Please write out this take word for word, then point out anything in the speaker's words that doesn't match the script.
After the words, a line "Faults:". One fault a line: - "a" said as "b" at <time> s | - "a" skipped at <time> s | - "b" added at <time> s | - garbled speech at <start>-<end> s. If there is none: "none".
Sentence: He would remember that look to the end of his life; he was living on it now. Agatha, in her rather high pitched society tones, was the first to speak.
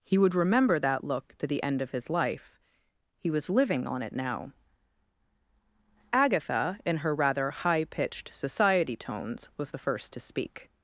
He would remember that look to the end of his life; he was living on it now. Agatha, in her rather high pitched society tones, was the first to speak.
Faults:
none